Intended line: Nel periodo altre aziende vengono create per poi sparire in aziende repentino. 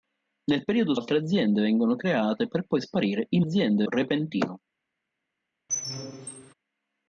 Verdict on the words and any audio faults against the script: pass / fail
fail